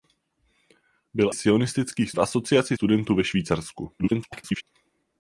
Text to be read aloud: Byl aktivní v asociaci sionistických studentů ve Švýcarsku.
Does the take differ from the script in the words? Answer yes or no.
yes